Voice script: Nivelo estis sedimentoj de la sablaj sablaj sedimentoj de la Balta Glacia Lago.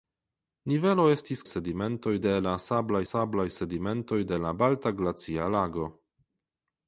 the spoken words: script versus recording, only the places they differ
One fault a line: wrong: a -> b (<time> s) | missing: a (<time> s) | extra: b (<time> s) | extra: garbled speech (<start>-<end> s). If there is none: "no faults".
no faults